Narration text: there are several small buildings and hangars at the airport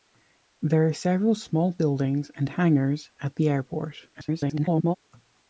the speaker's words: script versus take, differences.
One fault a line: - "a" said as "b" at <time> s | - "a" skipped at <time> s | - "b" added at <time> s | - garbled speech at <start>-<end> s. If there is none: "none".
- garbled speech at 4.1-5.0 s